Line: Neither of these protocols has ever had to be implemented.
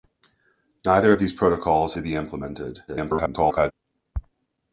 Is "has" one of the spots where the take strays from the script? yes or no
yes